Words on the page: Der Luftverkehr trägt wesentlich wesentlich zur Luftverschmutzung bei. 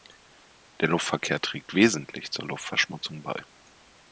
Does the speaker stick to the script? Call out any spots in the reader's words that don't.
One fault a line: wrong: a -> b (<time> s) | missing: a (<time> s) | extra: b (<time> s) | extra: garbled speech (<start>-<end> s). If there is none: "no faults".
missing: wesentlich (2.3 s)